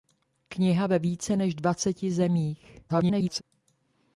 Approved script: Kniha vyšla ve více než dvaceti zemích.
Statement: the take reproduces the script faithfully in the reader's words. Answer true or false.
false